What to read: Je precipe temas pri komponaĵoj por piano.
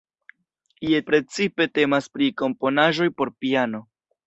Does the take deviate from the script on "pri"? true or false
false